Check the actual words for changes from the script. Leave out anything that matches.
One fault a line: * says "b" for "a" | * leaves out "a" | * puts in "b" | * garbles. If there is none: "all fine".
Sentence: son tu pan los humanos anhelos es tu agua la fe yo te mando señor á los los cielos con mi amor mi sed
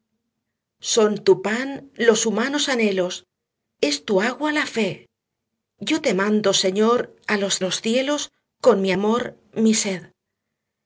all fine